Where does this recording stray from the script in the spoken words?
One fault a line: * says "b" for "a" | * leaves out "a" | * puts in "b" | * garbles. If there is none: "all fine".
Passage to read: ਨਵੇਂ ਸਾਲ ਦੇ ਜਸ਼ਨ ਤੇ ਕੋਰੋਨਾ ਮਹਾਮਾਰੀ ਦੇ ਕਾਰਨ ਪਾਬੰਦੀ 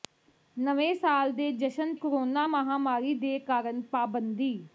* leaves out "ਤੇ"